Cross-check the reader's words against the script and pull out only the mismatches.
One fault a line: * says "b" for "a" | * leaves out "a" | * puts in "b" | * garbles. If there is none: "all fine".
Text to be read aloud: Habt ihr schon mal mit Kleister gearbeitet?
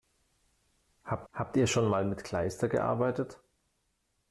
* puts in "habt"